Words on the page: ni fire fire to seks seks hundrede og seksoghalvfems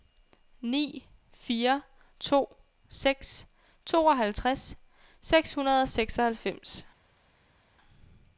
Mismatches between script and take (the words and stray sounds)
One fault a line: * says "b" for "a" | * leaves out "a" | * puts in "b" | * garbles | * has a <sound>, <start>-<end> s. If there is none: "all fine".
* leaves out "fire"
* puts in "tooghalvtreds"